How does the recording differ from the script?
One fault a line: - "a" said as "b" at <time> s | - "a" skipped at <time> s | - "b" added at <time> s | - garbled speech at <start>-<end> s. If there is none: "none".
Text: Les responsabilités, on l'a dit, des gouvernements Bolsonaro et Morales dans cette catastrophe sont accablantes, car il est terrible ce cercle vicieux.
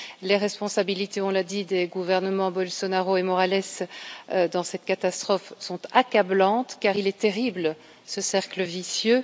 none